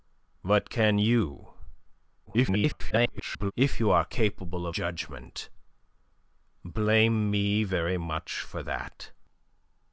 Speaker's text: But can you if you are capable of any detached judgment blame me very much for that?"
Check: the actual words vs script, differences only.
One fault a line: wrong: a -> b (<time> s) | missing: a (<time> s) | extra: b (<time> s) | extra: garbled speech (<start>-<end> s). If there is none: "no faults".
extra: garbled speech (2.3-3.5 s)
missing: any detached (4.8 s)